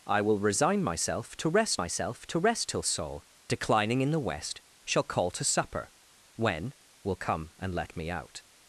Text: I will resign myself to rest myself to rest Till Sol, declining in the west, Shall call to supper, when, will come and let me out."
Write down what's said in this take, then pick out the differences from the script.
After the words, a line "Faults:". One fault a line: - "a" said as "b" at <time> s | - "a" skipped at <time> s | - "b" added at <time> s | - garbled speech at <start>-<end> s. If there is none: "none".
I will resign myself to rest myself to rest Till Sol, declining in the west, Shall call to supper, when, will come and let me out."
Faults:
none